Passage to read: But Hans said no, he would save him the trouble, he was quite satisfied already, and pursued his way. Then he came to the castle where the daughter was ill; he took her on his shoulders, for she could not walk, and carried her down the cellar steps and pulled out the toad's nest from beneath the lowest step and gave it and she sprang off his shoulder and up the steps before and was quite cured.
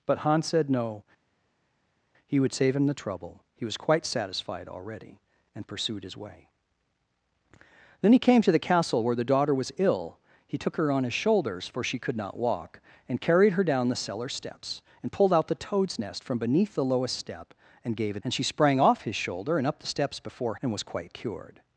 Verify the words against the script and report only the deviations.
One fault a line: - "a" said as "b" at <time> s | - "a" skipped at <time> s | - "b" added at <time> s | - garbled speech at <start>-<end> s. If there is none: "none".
none